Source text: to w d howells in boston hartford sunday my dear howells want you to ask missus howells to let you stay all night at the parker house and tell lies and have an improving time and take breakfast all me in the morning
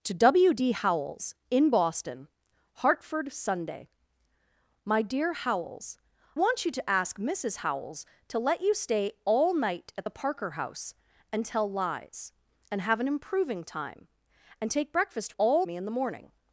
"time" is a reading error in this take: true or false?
false